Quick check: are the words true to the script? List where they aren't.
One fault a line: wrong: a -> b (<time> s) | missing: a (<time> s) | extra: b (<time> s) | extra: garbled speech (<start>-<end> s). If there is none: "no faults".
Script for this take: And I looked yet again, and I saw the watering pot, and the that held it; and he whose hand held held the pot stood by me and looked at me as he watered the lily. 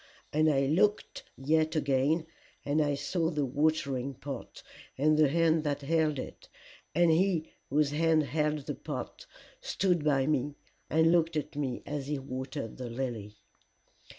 extra: hand (5.3 s)
missing: held (8.7 s)